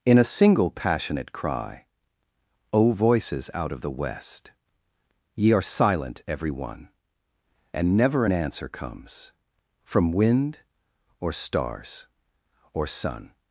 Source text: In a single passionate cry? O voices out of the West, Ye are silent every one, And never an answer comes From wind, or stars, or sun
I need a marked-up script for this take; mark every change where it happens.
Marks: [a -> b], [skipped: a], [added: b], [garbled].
In a single passionate cry? O voices out of the West, Ye are silent every one, And never an answer comes From wind, or stars, or sun